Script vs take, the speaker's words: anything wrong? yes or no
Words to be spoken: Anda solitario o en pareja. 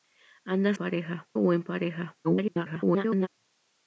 yes